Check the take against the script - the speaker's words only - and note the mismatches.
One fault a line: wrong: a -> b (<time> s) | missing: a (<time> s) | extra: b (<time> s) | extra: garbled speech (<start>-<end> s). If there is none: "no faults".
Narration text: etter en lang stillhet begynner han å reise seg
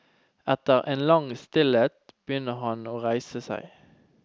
no faults